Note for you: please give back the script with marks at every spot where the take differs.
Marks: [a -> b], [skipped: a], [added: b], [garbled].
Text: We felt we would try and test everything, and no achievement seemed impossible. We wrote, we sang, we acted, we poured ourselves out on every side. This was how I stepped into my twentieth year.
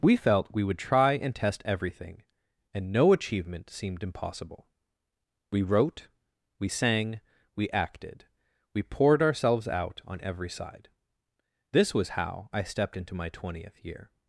We felt we would try and test everything, and no achievement seemed impossible. We wrote, we sang, we acted, we poured ourselves out on every side. This was how I stepped into my twentieth year.